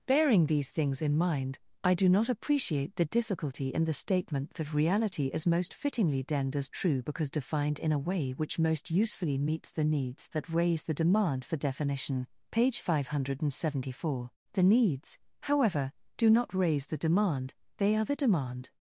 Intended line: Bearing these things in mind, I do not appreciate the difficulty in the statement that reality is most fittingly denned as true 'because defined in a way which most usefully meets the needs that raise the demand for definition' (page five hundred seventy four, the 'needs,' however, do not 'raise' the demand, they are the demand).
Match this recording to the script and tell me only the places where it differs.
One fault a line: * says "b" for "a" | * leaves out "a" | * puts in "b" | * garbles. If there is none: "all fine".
all fine